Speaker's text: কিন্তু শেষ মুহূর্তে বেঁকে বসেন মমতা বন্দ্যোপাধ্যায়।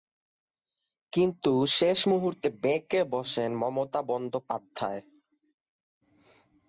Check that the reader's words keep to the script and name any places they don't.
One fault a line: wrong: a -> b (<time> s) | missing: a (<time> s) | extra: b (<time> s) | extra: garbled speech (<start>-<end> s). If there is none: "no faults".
no faults